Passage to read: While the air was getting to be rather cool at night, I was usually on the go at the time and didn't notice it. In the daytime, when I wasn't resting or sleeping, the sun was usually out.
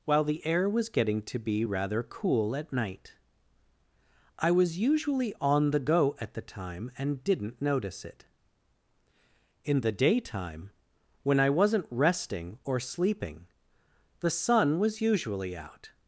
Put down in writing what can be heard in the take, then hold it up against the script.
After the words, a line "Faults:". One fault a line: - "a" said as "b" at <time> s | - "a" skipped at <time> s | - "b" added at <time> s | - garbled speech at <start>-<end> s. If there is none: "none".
While the air was getting to be rather cool at night, I was usually on the go at the time and didn't notice it. In the daytime, when I wasn't resting or sleeping, the sun was usually out.
Faults:
none